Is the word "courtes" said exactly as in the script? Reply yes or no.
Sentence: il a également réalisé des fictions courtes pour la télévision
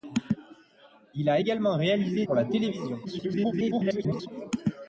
no